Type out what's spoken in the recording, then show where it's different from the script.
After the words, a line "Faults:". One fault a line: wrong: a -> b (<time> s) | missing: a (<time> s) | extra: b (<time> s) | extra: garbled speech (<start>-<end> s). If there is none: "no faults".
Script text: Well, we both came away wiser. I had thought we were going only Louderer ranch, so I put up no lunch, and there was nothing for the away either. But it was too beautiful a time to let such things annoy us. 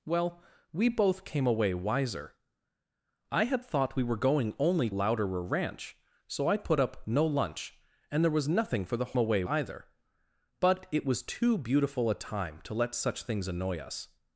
Well, we both came away wiser. I had thought we were going only Louderer ranch, so I put up no lunch, and there was nothing for the away either. But it was too beautiful a time to let such things annoy us.
Faults:
no faults